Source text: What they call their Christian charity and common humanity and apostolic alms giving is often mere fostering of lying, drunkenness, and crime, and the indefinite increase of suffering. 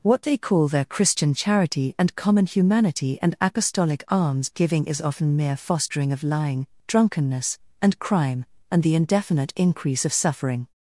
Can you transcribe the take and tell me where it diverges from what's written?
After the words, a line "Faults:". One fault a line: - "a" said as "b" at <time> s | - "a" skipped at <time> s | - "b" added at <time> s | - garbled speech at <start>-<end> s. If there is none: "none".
What they call their Christian charity and common humanity and apostolic alms giving is often mere fostering of lying, drunkenness, and crime, and the indefinite increase of suffering.
Faults:
none